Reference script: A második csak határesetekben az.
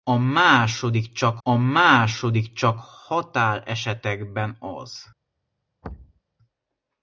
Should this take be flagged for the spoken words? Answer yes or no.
yes